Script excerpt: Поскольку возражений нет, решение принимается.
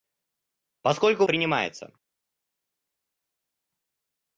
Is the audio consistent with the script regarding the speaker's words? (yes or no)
no